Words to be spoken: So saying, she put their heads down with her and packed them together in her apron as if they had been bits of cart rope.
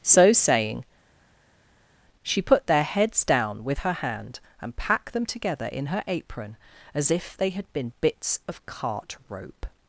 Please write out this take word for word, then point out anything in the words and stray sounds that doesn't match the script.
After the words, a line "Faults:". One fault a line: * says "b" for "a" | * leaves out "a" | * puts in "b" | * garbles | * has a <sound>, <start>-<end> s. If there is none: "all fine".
So saying, she put their heads down with her hand, and packed them together in her apron as if they had been bits of cart rope.
Faults:
* puts in "hand"